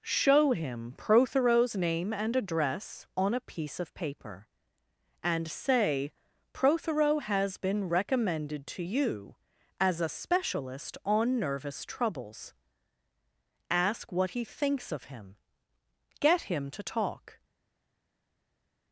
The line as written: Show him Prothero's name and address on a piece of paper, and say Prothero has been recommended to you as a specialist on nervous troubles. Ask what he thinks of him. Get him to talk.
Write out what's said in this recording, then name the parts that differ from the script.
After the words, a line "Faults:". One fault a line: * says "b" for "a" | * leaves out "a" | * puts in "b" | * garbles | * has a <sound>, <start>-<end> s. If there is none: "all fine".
Show him Prothero's name and address on a piece of paper, and say Prothero has been recommended to you as a specialist on nervous troubles. Ask what he thinks of him. Get him to talk.
Faults:
all fine